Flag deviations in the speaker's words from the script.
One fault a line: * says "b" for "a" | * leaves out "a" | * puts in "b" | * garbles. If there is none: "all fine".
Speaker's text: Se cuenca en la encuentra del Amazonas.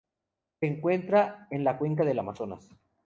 * says "encuentra" for "cuenca"
* says "cuenca" for "encuentra"